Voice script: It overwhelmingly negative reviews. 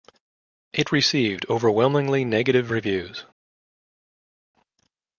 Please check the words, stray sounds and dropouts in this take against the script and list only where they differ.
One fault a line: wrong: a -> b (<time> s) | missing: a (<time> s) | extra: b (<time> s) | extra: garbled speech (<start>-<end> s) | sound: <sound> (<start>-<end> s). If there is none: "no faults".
extra: received (0.9 s)